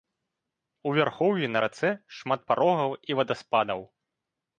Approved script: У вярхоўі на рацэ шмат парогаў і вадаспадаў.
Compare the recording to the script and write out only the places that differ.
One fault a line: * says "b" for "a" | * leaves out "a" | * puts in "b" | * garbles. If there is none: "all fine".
all fine